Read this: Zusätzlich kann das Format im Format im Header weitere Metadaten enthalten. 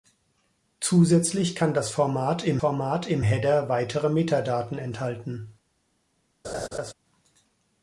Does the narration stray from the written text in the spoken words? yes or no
no